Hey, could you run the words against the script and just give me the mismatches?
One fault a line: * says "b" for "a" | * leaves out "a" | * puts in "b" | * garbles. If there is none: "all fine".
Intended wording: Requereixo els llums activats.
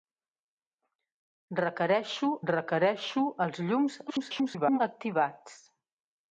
* puts in "requereixo"
* garbles